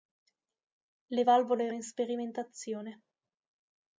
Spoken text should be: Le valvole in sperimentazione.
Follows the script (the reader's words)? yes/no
yes